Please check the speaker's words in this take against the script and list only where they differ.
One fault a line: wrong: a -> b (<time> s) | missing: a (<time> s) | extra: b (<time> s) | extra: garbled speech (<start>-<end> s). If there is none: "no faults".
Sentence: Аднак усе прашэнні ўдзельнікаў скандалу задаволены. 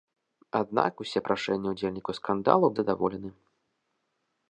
no faults